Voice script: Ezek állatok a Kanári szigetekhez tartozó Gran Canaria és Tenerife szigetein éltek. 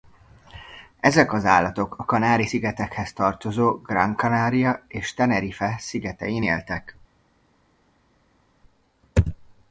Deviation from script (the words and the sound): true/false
true